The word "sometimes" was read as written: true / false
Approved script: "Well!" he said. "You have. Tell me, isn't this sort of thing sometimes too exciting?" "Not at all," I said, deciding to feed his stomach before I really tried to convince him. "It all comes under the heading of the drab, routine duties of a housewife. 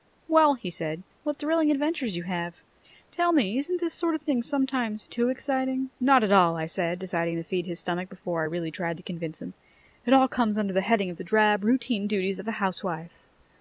true